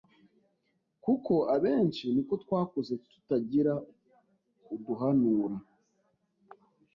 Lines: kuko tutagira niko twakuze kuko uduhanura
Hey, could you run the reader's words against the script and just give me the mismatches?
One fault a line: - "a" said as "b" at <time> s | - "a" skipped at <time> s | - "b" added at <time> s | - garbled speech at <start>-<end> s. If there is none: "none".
- "tutagira" said as "abenshi" at 1.6 s
- "kuko" said as "tutagira" at 3.1 s